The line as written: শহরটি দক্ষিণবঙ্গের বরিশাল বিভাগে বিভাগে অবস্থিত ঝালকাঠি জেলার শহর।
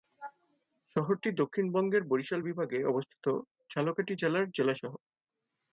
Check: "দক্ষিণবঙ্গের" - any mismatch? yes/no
no